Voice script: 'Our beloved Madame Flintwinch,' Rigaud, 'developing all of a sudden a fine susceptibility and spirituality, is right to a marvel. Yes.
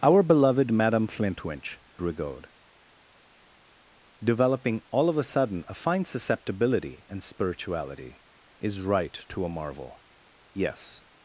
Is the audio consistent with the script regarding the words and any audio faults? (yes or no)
yes